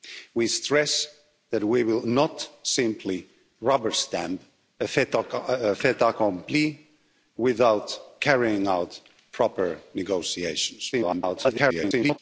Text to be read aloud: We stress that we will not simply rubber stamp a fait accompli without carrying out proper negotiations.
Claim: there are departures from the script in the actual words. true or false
true